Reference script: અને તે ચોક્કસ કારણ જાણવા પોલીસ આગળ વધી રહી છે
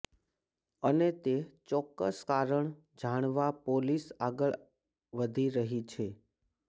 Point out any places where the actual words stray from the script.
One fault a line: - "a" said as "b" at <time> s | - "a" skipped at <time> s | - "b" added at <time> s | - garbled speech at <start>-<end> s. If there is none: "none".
none